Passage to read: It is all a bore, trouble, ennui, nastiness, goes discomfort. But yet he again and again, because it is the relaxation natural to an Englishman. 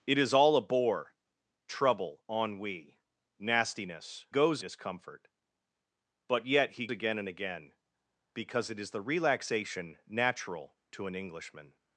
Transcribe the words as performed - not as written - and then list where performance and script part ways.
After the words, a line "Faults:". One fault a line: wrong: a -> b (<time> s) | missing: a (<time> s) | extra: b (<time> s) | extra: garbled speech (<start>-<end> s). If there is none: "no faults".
It is all a bore, trouble, ennui, nastiness, goes discomfort. But yet he again and again, because it is the relaxation natural to an Englishman.
Faults:
no faults